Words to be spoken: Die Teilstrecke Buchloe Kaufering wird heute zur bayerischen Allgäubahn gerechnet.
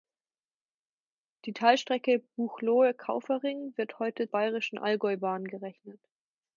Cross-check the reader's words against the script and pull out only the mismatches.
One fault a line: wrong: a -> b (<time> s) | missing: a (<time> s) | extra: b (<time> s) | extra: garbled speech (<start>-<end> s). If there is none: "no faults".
missing: zur (4.3 s)